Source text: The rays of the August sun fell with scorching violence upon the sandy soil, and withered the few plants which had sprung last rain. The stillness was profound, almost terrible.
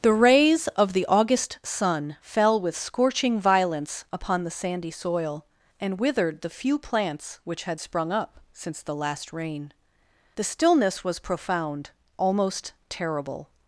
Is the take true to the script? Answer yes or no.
no